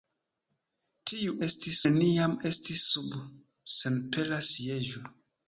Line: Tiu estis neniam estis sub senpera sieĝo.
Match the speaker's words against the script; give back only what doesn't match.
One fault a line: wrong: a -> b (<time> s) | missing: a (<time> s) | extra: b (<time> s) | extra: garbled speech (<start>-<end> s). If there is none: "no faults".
no faults